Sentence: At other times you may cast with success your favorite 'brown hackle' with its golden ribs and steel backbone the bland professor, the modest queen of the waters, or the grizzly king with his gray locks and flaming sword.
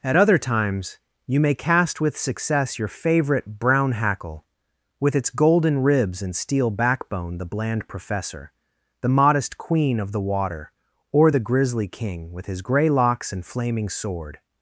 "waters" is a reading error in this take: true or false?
true